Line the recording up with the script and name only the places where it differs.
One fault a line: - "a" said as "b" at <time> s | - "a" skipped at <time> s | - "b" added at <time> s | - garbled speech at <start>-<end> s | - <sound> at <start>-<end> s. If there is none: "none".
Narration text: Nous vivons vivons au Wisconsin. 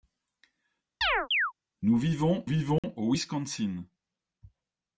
- chirp at 1.0-1.5 s
- dropout at 2.8-2.8 s